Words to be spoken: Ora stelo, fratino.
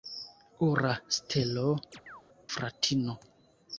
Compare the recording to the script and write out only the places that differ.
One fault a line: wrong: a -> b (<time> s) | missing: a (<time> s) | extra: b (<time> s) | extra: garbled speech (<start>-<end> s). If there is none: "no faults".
no faults